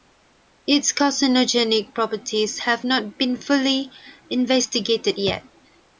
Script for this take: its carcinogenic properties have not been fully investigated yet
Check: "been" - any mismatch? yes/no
no